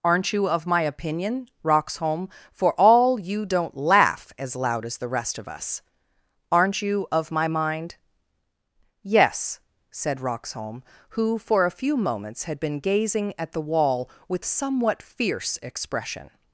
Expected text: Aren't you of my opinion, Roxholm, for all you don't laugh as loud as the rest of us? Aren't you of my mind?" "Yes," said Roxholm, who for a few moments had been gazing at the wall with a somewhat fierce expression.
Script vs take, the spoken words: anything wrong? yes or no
yes